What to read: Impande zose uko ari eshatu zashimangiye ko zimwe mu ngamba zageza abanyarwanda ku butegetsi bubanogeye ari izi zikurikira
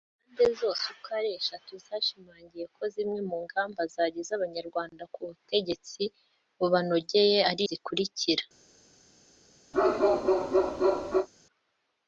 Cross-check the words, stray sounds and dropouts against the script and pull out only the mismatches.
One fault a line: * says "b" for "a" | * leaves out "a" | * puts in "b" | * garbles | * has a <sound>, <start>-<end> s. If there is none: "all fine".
* leaves out "izi"
* has a bark, 9.7-11.3 s